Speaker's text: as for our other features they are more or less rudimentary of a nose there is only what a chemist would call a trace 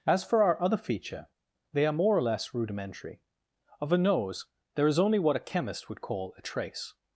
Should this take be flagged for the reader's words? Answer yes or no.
yes